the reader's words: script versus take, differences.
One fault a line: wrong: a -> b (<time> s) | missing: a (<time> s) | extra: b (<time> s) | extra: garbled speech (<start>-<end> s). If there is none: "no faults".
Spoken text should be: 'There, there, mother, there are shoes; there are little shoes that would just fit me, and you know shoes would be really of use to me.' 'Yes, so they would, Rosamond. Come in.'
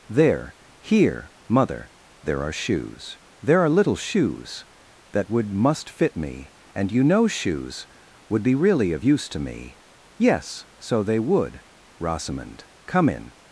wrong: there -> here (0.8 s)
wrong: just -> must (5.5 s)